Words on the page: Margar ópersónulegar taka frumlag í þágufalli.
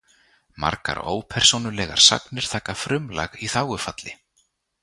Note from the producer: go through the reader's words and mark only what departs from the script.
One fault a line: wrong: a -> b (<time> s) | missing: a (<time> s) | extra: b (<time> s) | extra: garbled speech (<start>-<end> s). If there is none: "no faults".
extra: sagnir (2.1 s)